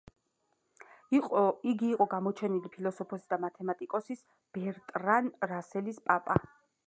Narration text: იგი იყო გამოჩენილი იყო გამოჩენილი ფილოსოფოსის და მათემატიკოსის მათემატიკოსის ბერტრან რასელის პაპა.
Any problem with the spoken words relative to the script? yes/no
yes